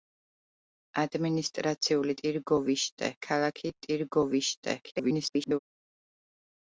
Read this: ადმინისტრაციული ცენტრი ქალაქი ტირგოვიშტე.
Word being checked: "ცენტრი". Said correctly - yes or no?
no